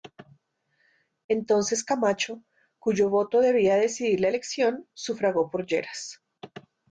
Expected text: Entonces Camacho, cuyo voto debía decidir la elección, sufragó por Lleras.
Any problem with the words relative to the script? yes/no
no